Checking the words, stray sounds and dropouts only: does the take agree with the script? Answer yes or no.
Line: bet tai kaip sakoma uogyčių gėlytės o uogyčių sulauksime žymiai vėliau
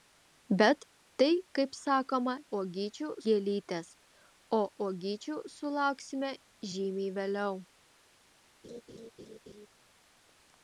no